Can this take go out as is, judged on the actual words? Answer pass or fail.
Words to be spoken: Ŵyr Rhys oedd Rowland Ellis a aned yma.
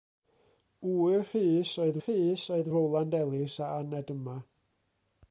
fail